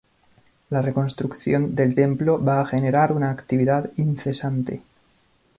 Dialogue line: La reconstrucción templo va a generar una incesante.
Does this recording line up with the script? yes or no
no